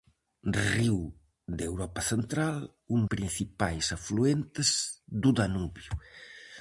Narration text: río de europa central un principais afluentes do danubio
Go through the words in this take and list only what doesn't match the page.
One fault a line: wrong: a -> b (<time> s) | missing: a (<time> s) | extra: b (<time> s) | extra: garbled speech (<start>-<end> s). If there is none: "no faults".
no faults